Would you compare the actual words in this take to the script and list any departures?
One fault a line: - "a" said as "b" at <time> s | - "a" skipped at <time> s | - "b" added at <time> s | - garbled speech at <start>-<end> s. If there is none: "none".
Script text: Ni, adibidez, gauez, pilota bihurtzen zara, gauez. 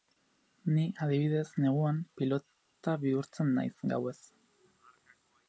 - "gauez" said as "neguan" at 1.6 s
- "zara" said as "naiz" at 3.6 s